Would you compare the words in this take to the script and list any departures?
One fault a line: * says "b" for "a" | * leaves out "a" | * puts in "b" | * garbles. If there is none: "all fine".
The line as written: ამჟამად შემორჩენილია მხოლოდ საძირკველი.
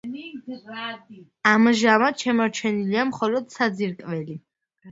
all fine